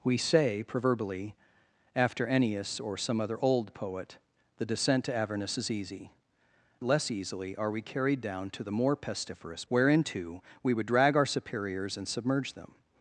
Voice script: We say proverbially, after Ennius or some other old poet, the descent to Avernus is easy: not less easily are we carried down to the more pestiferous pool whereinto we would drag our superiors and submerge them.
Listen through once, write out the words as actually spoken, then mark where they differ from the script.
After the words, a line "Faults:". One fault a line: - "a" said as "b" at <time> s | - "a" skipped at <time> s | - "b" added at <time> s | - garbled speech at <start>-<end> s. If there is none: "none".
We say proverbially, after Ennius or some other old poet, the descent to Avernus is easy: less easily are we carried down to the more pestiferous whereinto we would drag our superiors and submerge them.
Faults:
- "not" skipped at 6.1 s
- "pool" skipped at 9.7 s